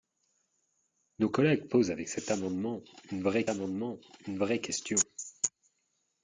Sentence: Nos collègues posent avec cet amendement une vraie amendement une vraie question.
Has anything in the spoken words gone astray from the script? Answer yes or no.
no